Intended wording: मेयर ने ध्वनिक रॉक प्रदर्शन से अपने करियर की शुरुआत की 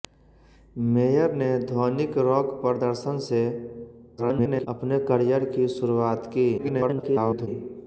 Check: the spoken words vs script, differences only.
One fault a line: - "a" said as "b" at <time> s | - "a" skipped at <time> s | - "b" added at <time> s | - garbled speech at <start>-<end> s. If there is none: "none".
- garbled speech at 4.2-4.7 s
- garbled speech at 6.6-7.5 s